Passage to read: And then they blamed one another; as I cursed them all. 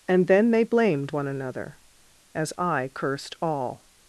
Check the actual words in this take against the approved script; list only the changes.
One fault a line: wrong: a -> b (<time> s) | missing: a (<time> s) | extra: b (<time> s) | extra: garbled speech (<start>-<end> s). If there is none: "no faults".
missing: them (3.4 s)